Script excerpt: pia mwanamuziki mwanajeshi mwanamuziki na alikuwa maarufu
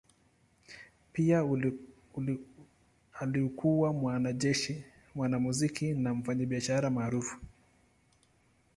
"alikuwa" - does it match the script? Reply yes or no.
no